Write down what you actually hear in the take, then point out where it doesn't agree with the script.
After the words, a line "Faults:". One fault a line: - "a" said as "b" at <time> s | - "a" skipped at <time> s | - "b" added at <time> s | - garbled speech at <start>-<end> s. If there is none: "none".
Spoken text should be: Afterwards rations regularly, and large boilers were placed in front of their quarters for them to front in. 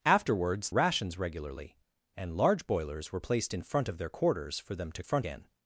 Afterwards rations regularly, and large boilers were placed in front of their quarters for them to front in.
Faults:
none